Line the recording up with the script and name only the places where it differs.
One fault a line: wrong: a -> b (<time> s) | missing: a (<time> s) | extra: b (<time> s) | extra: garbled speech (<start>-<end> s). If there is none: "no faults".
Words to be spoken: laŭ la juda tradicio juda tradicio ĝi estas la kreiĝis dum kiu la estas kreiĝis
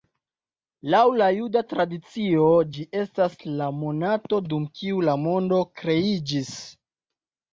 missing: juda tradicio (2.5 s)
wrong: kreiĝis -> monato (3.8 s)
wrong: estas -> mondo (5.3 s)